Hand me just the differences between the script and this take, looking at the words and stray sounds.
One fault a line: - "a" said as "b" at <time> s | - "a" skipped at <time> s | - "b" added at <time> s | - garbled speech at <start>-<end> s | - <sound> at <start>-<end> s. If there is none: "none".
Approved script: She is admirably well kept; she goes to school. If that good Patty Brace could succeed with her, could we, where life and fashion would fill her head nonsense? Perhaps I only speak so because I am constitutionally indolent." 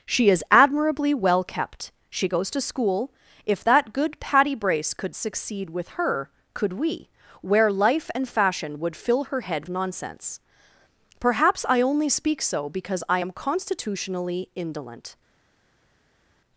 none